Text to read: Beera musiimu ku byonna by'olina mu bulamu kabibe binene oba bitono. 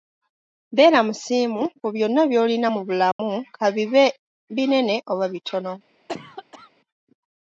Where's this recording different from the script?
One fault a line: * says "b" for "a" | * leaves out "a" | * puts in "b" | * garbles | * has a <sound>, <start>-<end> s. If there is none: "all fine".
* has a dropout, 3.1-3.2 s
* has a cough, 6.1-6.7 s